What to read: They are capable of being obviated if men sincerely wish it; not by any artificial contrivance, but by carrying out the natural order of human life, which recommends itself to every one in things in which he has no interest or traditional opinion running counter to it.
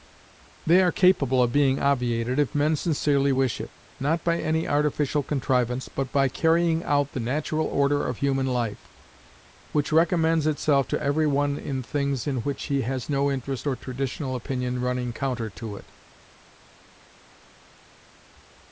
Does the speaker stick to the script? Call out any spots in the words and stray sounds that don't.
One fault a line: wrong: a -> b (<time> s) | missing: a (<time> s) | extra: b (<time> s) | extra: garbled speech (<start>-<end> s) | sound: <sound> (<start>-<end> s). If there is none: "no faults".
no faults